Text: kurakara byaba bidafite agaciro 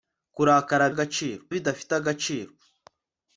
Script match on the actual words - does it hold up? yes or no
no